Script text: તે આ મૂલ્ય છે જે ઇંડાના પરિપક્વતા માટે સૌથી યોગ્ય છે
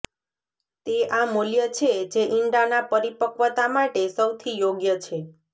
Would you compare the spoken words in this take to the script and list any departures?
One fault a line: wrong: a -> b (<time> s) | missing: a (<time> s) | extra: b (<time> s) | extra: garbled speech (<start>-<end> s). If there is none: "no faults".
no faults